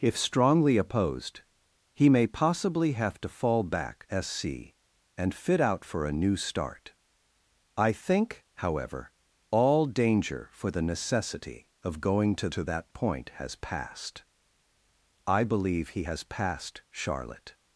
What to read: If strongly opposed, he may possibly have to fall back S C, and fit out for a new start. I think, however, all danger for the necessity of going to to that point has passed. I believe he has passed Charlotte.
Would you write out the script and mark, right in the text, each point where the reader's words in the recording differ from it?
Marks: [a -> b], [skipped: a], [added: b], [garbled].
If strongly opposed, he may possibly have to fall back S C, and fit out for a new start. I think, however, all danger for the necessity of going to to that point has passed. I believe he has passed Charlotte.